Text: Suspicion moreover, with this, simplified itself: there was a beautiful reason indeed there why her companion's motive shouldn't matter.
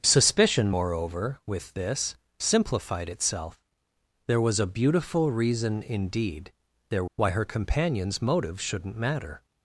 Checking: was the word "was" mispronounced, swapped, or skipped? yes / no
no